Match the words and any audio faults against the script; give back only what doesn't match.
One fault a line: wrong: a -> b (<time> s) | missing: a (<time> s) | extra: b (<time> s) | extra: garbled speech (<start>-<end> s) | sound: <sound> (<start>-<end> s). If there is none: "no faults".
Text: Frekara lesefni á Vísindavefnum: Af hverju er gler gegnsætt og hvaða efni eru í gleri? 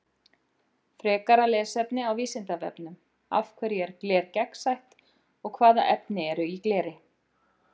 no faults